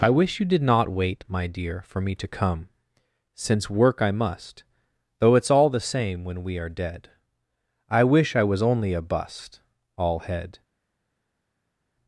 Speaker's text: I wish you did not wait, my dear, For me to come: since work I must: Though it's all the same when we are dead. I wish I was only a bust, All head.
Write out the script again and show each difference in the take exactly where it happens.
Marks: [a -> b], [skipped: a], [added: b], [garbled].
I wish you did not wait, my dear, For me to come: since work I must: Though it's all the same when we are dead. I wish I was only a bust, All head.